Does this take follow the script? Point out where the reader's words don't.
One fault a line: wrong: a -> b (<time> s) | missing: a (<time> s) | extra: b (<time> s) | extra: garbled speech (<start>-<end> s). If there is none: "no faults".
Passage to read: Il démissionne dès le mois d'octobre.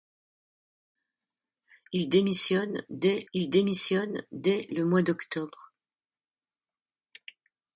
extra: il démissionne dès (3.3 s)